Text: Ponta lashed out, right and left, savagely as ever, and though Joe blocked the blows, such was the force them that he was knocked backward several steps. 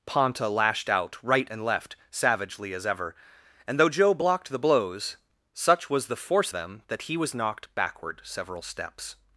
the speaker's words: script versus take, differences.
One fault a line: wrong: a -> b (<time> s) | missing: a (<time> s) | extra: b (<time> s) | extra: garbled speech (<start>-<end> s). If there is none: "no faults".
no faults